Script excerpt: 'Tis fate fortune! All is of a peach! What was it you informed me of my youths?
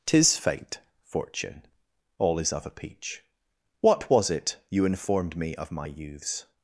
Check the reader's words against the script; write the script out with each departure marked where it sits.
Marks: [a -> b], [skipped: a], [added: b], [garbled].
'Tis fate fortune! All is of a peach! What was it you informed me of my youths?